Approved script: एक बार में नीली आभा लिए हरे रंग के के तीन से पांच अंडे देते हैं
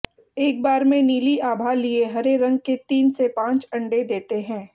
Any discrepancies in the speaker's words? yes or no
yes